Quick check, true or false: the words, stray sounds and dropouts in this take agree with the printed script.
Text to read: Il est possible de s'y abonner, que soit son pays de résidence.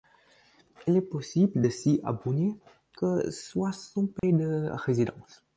false